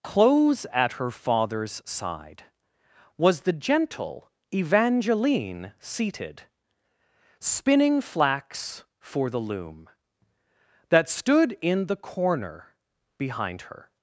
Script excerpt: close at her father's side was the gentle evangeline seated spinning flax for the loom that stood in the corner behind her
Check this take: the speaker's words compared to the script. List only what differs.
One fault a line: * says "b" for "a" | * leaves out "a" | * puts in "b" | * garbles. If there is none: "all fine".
all fine